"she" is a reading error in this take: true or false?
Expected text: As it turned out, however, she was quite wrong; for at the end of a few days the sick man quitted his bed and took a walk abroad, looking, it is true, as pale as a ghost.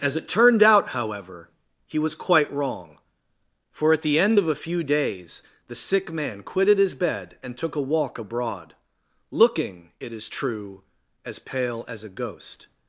true